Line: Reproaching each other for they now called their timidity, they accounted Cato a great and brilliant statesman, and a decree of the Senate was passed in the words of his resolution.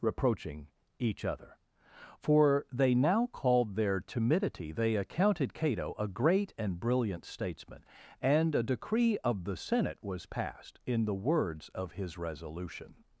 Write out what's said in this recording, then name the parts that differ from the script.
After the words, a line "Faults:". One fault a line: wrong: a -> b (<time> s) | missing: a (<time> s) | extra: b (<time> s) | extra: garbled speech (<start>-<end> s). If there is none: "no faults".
Reproaching each other for they now called their timidity, they accounted Cato a great and brilliant statesman, and a decree of the Senate was passed in the words of his resolution.
Faults:
no faults